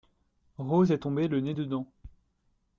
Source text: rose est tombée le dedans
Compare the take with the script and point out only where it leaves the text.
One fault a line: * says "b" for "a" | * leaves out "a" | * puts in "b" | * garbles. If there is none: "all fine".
* puts in "nez"